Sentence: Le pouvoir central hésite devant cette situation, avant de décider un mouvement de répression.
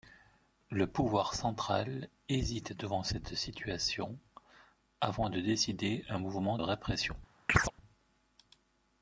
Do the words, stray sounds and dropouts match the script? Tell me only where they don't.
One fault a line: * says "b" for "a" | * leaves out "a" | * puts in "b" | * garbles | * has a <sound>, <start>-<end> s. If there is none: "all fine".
* leaves out "de"
* has a chirp, 7.5-7.7 s